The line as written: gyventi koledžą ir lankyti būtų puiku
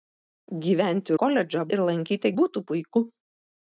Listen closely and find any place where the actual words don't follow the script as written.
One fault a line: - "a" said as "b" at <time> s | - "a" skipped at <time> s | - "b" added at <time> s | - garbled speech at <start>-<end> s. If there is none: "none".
none